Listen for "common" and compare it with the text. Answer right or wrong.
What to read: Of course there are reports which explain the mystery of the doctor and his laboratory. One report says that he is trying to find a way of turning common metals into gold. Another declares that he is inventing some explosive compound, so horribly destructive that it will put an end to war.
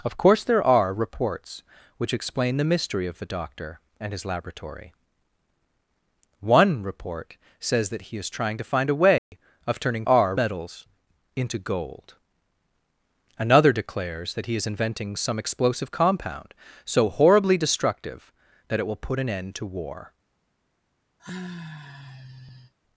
wrong